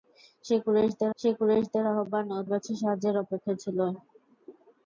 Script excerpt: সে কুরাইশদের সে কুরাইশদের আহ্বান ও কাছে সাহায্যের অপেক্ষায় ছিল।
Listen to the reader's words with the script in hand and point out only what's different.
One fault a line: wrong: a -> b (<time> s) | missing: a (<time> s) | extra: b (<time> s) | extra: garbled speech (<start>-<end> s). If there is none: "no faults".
no faults